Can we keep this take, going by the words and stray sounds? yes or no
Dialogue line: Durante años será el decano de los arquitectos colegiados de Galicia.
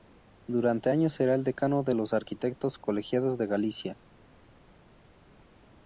yes